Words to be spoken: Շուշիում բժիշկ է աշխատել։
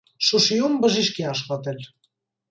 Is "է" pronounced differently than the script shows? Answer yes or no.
no